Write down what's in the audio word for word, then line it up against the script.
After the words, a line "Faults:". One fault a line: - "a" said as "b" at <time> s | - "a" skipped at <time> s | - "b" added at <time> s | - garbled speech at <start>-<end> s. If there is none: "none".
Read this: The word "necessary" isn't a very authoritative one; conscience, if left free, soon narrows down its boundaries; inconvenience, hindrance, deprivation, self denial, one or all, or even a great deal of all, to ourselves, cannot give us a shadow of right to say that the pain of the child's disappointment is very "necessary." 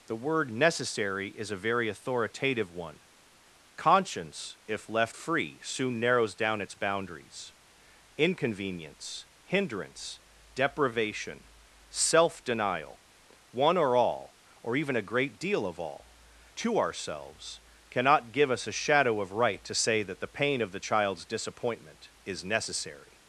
The word "necessary" is a very authoritative one; conscience, if left free, soon narrows down its boundaries; inconvenience, hindrance, deprivation, self denial, one or all, or even a great deal of all, to ourselves, cannot give us a shadow of right to say that the pain of the child's disappointment is "necessary."
Faults:
- "isn't" said as "is" at 1.3 s
- "very" skipped at 22.4 s